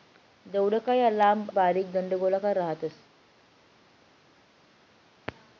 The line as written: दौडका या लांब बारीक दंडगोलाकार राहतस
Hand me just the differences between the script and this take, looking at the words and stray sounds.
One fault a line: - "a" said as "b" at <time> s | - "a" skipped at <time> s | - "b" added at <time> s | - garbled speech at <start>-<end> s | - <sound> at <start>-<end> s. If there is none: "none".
none